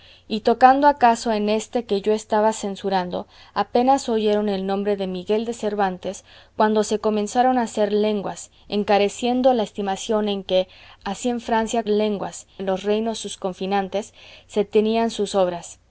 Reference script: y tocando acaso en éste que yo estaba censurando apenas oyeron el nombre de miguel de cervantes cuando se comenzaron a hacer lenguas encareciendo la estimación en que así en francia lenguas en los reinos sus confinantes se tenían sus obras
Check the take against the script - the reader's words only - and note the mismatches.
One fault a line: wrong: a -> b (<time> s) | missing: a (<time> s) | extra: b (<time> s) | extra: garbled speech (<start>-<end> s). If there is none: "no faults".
no faults